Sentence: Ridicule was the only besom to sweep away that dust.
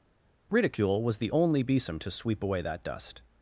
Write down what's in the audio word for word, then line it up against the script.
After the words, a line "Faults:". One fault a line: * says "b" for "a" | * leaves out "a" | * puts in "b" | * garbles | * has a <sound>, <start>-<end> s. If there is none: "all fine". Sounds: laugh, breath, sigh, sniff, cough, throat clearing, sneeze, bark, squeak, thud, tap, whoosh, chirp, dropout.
Ridicule was the only besom to sweep away that dust.
Faults:
all fine